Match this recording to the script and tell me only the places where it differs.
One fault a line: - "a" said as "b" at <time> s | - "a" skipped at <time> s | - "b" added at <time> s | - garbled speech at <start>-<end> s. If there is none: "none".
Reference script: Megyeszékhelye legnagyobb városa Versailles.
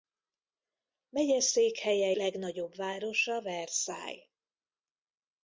none